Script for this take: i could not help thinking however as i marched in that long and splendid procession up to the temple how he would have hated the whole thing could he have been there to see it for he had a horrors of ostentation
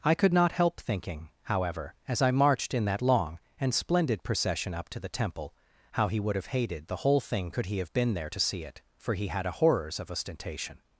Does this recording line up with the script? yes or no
yes